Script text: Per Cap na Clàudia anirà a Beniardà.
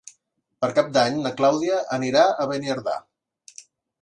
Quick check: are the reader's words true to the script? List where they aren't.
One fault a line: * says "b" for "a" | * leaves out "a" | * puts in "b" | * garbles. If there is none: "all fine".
* puts in "d'Any"